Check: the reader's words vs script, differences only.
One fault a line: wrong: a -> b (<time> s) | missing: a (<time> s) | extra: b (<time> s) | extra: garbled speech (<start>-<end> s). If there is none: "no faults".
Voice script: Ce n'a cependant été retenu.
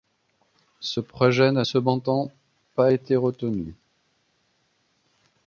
extra: projet (1.0 s)
extra: pas (2.7 s)